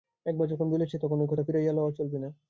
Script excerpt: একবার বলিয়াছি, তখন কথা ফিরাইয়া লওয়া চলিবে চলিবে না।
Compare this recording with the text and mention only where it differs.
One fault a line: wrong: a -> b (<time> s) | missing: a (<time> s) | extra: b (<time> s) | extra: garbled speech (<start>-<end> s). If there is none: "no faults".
extra: যখন (0.5 s)
extra: ঐ (1.2 s)
missing: চলিবে (2.2 s)